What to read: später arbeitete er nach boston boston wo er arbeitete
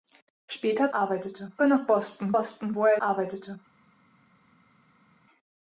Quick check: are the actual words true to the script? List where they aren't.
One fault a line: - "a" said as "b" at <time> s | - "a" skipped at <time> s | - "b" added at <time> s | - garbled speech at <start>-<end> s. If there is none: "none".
none